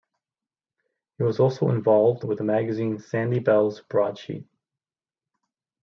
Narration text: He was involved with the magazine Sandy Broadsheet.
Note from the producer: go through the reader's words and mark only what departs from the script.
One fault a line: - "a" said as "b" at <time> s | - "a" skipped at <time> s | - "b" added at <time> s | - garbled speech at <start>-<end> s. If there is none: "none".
- "also" added at 1.4 s
- "Bell's" added at 3.4 s